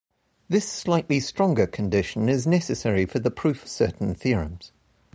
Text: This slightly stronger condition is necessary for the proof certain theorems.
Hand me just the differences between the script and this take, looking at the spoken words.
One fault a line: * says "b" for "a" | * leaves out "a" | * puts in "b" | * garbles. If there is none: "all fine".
all fine